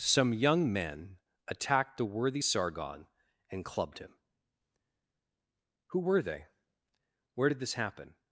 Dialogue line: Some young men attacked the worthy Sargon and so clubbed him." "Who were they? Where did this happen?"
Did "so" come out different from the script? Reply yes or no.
yes